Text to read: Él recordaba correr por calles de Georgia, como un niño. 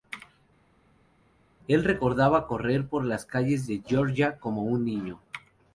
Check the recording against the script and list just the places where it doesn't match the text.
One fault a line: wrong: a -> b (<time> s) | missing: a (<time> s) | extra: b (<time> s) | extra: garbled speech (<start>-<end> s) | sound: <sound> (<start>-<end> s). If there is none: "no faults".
extra: las (3.1 s)